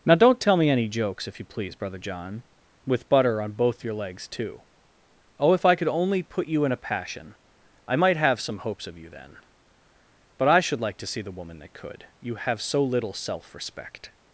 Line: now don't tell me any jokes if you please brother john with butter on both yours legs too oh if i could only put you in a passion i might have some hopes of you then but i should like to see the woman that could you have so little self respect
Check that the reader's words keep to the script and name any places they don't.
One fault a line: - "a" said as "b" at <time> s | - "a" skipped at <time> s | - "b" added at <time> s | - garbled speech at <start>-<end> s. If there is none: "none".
- "yours" said as "your" at 3.8 s